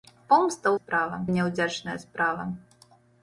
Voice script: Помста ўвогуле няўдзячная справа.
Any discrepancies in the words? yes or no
yes